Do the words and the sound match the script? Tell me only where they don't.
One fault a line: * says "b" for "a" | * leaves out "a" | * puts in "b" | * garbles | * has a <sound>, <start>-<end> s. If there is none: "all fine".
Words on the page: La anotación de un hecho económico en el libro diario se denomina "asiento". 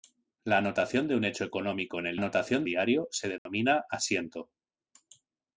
* says "anotación" for "libro"
* has a dropout, 3.4-3.5 s